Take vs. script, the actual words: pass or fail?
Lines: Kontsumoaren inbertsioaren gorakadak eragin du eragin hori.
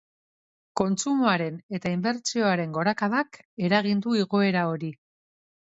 fail